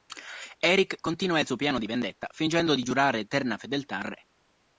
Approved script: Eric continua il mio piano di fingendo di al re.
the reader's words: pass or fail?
fail